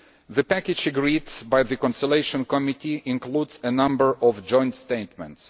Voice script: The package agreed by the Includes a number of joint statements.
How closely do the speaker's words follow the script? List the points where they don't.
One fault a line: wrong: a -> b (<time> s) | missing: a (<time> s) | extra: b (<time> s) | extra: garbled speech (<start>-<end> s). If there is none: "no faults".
extra: Conciliation Committee (1.8 s)